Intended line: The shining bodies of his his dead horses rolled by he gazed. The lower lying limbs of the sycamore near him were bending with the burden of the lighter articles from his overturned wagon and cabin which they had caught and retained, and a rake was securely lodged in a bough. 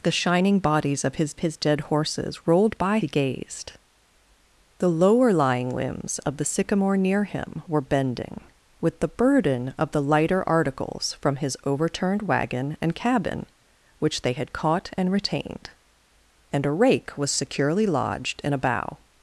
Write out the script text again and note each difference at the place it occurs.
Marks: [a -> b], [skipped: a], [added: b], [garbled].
The shining bodies of his his dead horses rolled by he gazed. The lower lying limbs of the sycamore near him were bending with the burden of the lighter articles from his overturned wagon and cabin which they had caught and retained, and a rake was securely lodged in a bough.